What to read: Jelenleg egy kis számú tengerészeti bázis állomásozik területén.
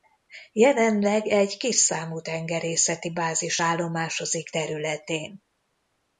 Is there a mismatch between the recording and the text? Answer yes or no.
no